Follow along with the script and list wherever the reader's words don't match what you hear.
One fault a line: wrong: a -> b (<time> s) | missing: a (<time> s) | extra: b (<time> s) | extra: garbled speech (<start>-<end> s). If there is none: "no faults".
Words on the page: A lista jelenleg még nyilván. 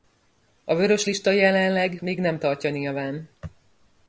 extra: vörös (0.8 s)
extra: nem tartja (2.2 s)